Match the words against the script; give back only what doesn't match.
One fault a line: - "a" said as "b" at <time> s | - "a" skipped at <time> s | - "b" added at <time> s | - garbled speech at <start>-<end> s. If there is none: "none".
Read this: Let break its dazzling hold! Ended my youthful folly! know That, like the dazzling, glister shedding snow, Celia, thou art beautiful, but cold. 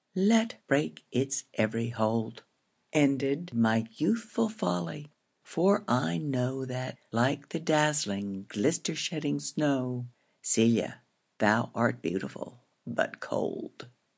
- "dazzling" said as "every" at 1.5 s
- "for I" added at 5.4 s